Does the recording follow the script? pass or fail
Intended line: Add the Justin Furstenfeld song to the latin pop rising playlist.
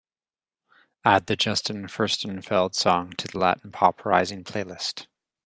pass